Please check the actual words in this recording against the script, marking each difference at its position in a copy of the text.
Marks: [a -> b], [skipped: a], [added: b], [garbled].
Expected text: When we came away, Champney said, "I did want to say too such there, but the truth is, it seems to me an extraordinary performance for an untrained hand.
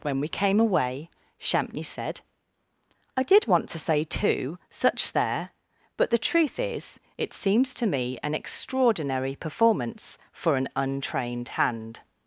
When we came away, Champney said, "I did want to say too such there, but the truth is, it seems to me an extraordinary performance for an untrained hand.